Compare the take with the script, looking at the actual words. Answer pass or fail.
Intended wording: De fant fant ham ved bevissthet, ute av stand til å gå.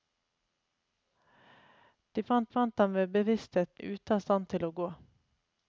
pass